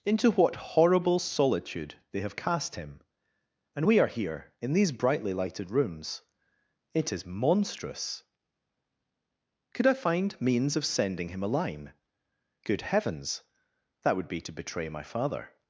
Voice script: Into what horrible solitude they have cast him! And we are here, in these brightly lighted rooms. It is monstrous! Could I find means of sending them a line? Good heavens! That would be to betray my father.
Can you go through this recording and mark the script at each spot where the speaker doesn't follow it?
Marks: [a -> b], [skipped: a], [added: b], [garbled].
Into what horrible solitude they have cast him! And we are here, in these brightly lighted rooms. It is monstrous! Could I find means of sending [them -> him] a line? Good heavens! That would be to betray my father.